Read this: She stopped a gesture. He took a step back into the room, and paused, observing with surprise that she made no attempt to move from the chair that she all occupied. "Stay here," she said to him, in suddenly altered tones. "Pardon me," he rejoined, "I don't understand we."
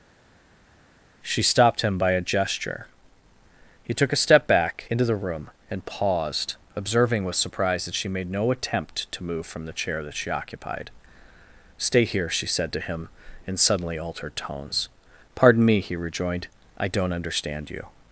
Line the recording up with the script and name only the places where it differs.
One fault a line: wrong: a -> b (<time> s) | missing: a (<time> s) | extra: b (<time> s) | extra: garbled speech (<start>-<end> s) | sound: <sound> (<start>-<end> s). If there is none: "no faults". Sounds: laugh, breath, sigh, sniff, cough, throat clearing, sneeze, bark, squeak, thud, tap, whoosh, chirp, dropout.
extra: him by (1.8 s)
missing: all (10.3 s)
wrong: we -> you (17.7 s)